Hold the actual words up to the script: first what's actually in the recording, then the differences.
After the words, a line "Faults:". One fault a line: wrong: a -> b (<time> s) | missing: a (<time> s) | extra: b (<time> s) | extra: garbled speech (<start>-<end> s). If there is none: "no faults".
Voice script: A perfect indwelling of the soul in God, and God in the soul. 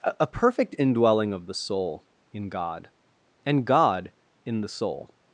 A perfect indwelling of the soul in God, and God in the soul.
Faults:
no faults